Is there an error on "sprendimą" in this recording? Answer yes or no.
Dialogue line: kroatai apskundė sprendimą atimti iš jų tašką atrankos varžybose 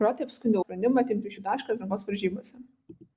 no